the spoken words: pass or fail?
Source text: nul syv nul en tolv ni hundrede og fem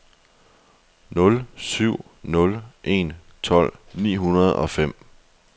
pass